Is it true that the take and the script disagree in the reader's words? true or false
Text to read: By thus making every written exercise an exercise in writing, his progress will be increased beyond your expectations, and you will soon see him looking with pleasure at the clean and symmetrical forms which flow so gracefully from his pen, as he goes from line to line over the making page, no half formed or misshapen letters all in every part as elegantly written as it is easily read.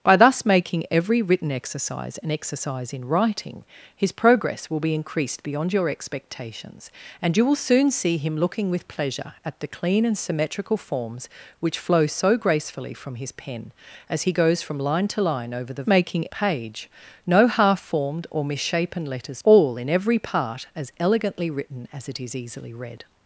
false